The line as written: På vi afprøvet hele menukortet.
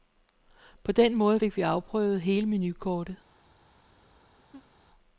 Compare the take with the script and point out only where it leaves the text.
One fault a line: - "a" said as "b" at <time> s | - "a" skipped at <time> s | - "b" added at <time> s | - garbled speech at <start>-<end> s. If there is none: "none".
- "den måde fik" added at 0.9 s